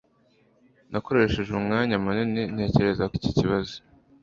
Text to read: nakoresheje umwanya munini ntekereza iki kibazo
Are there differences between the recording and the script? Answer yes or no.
no